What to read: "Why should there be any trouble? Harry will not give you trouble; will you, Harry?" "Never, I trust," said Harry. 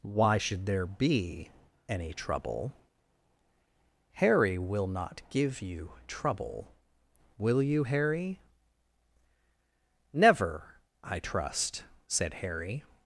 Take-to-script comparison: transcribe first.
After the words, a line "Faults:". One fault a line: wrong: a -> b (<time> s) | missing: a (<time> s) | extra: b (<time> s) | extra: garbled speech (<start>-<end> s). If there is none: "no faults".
"Why should there be any trouble? Harry will not give you trouble; will you, Harry?" "Never, I trust," said Harry.
Faults:
no faults